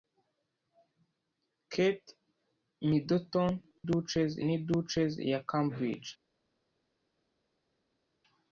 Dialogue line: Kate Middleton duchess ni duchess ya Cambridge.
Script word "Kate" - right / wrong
right